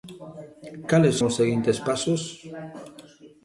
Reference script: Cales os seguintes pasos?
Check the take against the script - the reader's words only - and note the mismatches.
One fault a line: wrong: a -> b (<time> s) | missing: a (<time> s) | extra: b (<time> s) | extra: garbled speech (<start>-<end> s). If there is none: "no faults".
no faults